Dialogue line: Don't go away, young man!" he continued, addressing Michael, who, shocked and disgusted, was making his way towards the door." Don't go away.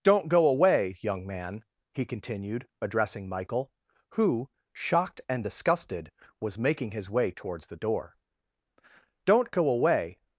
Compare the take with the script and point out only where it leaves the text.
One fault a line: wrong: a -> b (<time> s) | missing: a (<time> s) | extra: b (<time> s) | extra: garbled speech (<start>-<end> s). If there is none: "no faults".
no faults